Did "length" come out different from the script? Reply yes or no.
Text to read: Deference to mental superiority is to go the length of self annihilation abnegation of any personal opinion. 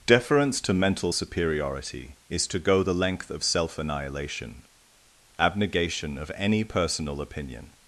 no